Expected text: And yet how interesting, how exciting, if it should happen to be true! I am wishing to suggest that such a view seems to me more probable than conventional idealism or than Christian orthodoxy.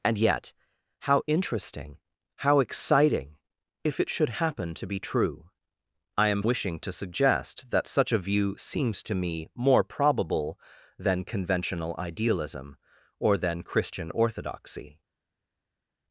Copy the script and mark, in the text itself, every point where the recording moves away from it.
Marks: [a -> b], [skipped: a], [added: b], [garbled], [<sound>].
And yet how interesting, how exciting, if it should happen to be true! I am wishing to suggest that such a view seems to me more probable than conventional idealism or than Christian orthodoxy.